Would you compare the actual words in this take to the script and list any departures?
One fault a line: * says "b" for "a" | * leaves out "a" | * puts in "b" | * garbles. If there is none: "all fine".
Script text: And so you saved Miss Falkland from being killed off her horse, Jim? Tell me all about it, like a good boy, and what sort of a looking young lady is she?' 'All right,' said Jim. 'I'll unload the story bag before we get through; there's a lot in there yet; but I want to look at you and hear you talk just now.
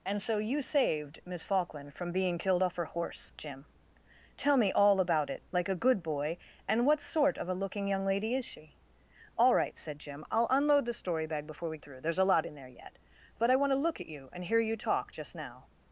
* leaves out "get"